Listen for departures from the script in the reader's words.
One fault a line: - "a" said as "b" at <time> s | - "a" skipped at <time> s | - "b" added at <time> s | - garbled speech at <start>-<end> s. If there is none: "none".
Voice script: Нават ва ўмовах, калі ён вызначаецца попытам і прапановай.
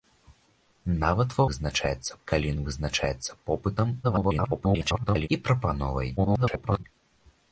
- "ўмовах" said as "вызначаецца" at 1.5 s
- garbled speech at 4.0-5.3 s
- garbled speech at 6.2-6.8 s